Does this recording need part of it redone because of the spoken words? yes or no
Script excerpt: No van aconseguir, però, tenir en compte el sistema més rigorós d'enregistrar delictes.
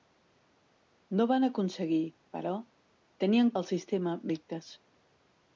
yes